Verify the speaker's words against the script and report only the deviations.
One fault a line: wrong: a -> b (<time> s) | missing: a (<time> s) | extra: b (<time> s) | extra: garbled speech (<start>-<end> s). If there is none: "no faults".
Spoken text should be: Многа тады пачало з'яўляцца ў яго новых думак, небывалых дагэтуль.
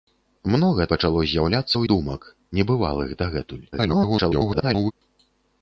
missing: тады (0.8 s)
missing: яго новых (1.8 s)
extra: garbled speech (3.7-4.9 s)